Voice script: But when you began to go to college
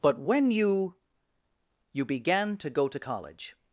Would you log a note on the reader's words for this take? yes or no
yes